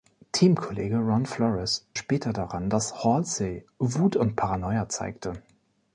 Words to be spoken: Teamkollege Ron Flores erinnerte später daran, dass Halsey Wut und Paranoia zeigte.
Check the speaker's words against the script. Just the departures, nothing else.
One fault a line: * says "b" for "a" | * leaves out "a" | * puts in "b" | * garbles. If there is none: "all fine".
* leaves out "erinnerte"